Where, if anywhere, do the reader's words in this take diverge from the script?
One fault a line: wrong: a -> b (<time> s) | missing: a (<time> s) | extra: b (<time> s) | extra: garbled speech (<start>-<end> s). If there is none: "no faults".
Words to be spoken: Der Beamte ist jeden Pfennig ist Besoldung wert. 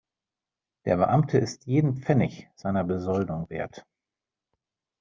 wrong: ist -> seiner (2.5 s)